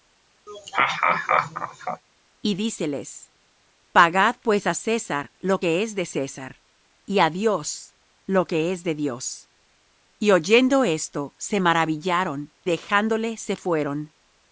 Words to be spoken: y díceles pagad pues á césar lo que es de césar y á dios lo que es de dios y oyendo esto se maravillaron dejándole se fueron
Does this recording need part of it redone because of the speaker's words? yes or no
no